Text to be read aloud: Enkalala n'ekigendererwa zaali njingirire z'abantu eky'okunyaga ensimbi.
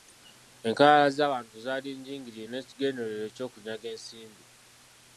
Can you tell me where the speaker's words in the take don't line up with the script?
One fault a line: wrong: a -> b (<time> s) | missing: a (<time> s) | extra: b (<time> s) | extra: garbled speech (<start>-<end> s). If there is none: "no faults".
wrong: n'ekigendererwa -> z'abantu (1.2 s)
wrong: z'abantu -> n'ekigendererwa (2.5 s)